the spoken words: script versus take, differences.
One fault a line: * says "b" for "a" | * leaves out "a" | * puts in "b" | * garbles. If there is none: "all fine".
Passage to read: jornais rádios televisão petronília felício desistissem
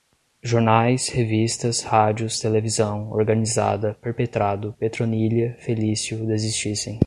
* puts in "revistas"
* puts in "organizada perpetrado"